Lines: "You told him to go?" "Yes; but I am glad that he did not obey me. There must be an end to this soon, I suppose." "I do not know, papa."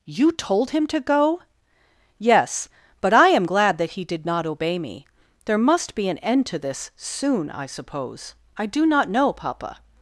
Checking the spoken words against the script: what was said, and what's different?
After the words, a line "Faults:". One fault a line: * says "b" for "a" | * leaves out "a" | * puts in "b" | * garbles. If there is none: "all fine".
"You told him to go?" "Yes; but I am glad that he did not obey me. There must be an end to this soon, I suppose." "I do not know, papa."
Faults:
all fine